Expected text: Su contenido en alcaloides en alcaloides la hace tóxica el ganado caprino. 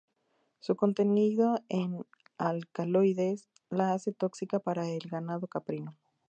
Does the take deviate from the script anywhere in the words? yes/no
yes